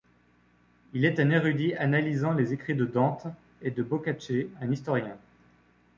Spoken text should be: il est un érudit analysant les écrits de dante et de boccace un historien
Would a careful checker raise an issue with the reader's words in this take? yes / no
no